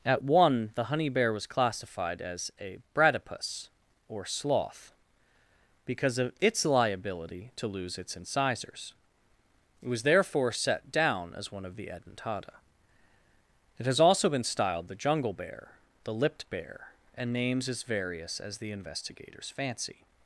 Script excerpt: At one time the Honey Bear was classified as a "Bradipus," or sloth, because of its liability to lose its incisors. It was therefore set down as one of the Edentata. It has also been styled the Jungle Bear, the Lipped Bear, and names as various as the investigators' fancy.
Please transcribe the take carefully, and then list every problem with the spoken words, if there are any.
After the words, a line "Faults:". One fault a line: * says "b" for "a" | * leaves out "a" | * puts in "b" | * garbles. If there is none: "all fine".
At one the Honey Bear was classified as a "Bradipus," or sloth, because of its liability to lose its incisors. It was therefore set down as one of the Edentata. It has also been styled the Jungle Bear, the Lipped Bear, and names as various as the investigators' fancy.
Faults:
* leaves out "time"